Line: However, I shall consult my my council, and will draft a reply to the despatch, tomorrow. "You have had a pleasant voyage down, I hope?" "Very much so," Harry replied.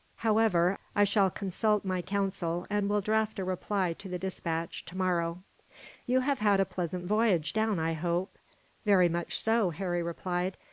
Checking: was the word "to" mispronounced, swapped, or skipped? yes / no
no